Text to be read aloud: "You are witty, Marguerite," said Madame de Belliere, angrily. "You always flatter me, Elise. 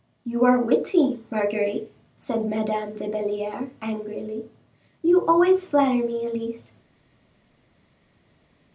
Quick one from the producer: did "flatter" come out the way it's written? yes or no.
yes